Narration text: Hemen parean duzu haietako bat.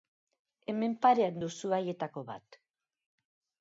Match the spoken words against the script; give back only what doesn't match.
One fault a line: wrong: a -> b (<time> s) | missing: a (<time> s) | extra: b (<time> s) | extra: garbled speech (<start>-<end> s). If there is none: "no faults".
no faults